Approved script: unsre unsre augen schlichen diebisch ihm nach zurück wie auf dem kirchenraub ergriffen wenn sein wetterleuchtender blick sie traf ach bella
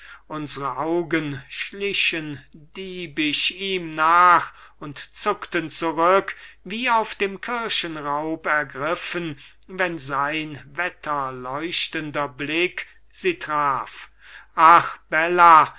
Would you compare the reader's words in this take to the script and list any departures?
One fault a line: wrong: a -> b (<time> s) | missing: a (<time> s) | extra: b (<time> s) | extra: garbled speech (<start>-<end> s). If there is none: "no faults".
missing: unsre (0.8 s)
extra: und zuckten (4.8 s)